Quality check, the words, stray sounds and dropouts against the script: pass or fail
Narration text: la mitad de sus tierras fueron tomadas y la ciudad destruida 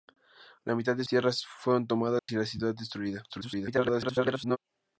fail